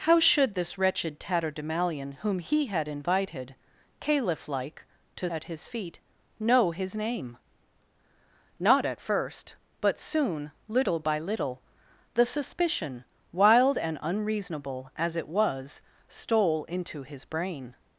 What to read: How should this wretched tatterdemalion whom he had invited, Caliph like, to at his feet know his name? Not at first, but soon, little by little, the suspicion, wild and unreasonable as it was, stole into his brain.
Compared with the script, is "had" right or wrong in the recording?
right